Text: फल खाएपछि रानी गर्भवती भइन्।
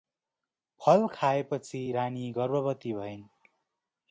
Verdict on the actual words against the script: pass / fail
pass